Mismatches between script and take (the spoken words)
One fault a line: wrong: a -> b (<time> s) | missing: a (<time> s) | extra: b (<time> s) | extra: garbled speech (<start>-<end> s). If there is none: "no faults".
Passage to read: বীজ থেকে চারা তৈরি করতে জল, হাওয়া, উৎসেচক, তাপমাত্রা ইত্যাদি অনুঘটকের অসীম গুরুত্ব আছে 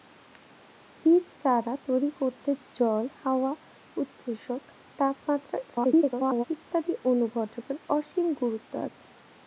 missing: থেকে (1.2 s)
extra: garbled speech (5.7-6.4 s)